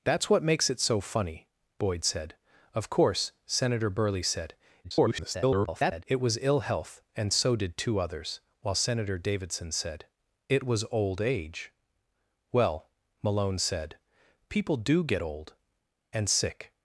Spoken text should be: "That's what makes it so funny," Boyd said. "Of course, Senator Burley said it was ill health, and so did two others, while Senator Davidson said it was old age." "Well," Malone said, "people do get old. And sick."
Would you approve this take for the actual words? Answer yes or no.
no